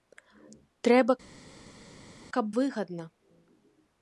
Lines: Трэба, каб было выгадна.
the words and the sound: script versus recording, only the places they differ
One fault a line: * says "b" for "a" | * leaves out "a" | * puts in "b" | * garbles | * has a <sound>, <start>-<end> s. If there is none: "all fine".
* leaves out "было"